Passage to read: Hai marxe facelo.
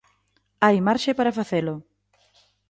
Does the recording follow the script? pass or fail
fail